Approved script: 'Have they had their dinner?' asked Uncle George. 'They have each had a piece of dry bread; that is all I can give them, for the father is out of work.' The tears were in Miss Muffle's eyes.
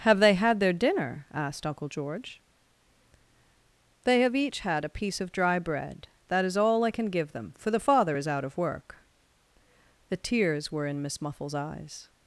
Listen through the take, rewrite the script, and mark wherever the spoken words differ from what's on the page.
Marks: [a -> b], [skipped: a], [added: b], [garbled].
'Have they had their dinner?' asked Uncle George. 'They have each had a piece of dry bread; that is all I can give them, for the father is out of work.' The tears were in Miss Muffle's eyes.